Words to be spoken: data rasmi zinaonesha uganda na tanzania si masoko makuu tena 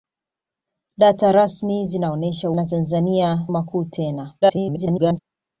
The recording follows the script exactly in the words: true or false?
false